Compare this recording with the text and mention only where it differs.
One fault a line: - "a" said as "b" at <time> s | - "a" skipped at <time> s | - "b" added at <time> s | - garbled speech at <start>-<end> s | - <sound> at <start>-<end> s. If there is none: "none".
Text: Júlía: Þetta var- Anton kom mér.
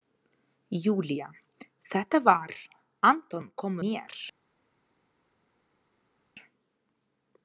none